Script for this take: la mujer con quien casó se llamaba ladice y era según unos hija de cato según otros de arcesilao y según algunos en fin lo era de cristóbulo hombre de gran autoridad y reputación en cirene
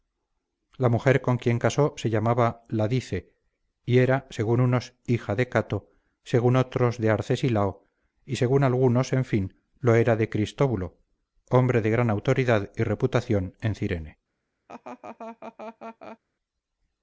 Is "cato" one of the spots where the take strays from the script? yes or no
no